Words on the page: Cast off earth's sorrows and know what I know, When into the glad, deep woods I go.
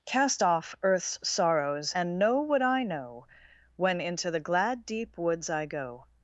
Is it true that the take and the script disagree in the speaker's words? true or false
false